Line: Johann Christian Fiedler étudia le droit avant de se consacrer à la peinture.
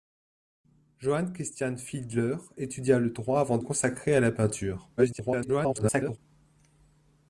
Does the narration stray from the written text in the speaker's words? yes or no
yes